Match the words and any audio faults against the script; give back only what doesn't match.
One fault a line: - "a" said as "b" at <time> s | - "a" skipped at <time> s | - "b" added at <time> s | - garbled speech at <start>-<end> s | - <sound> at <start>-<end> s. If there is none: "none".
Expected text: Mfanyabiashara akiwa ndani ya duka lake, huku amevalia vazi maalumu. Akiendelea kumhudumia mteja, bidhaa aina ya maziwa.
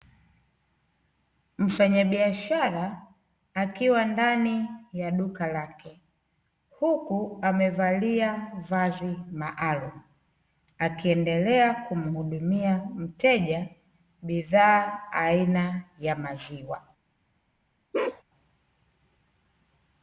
- bark at 17.9-18.2 s